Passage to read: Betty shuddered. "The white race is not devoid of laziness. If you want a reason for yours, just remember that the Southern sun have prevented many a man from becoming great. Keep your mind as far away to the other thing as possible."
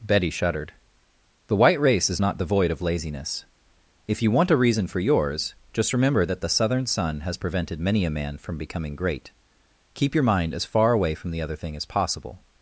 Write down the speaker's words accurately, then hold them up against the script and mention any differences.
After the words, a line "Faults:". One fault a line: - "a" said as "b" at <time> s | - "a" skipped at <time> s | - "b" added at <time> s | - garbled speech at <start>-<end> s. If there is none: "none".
Betty shuddered. "The white race is not devoid of laziness. If you want a reason for yours, just remember that the Southern sun has prevented many a man from becoming great. Keep your mind as far away from the other thing as possible."
Faults:
- "have" said as "has" at 7.2 s
- "to" said as "from" at 11.2 s